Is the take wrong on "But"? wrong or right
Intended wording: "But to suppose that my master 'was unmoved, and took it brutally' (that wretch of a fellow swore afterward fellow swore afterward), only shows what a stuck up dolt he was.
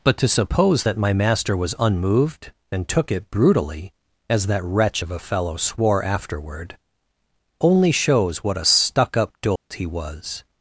right